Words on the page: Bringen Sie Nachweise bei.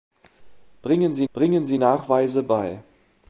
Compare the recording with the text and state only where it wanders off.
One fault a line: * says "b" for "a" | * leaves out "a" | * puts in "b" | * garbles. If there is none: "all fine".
* puts in "bringen Sie"